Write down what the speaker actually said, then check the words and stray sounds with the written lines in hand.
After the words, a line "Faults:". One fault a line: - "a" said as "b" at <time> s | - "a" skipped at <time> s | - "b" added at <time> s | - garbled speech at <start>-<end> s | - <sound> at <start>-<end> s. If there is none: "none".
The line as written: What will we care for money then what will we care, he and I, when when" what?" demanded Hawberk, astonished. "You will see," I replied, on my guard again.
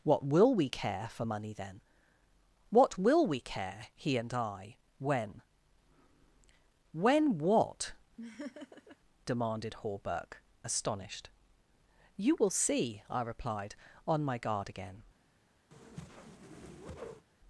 What will we care for money then what will we care, he and I, when when" what?" demanded Hawberk, astonished. "You will see," I replied, on my guard again.
Faults:
- laugh at 8.2-9.0 s
- whoosh at 15.7-17.3 s